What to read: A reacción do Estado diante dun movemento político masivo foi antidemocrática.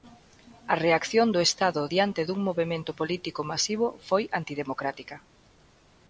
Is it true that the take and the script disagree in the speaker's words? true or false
false